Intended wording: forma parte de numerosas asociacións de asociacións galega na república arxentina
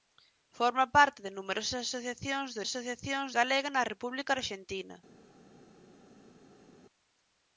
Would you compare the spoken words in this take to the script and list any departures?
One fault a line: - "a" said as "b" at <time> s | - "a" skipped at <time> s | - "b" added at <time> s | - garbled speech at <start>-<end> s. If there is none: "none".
none